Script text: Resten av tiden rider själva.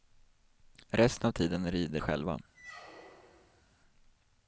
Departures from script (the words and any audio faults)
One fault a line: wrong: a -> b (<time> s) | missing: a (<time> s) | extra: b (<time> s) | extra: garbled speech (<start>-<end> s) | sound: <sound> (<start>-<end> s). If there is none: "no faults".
sound: squeak (2.5-3.6 s)